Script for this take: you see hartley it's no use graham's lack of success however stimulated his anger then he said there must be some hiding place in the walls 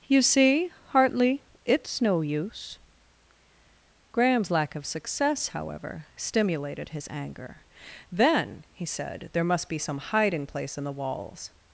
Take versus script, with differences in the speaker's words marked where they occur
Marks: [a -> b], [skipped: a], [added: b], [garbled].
you see hartley it's no use graham's lack of success however stimulated his anger then he said there must be some hiding place in the walls